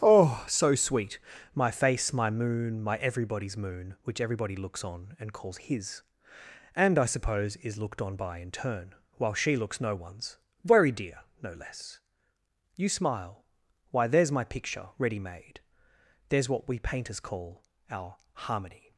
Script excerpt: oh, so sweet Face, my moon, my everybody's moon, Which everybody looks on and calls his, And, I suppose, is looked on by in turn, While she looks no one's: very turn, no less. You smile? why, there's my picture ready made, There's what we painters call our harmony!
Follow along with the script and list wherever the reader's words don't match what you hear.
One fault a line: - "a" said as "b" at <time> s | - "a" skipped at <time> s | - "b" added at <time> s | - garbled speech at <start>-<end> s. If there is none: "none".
- "My" added at 1.5 s
- "turn" said as "dear" at 10.9 s